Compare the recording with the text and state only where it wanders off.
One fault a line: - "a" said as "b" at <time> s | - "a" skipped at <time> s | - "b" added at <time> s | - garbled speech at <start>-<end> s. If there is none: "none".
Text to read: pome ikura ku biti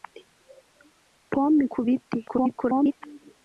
- "ikura" skipped at 1.6 s
- garbled speech at 2.3-2.9 s